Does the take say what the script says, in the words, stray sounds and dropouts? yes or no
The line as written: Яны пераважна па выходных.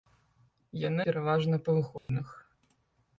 no